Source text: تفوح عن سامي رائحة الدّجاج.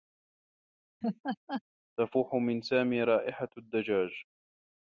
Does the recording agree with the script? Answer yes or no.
no